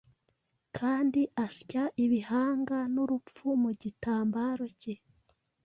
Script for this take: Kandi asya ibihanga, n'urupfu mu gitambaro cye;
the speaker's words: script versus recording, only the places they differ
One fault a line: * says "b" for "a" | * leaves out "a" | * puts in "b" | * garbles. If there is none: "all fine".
all fine